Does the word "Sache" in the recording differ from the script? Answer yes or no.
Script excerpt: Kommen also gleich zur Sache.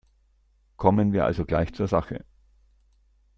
no